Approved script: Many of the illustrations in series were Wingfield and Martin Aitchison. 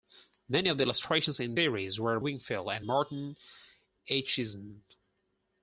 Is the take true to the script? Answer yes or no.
yes